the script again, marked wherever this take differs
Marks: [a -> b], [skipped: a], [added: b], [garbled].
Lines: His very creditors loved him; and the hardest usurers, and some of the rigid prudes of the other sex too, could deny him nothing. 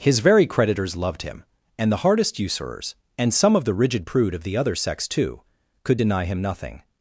His very creditors loved him; and the hardest usurers, and some of the rigid [prudes -> prude] of the other sex too, could deny him nothing.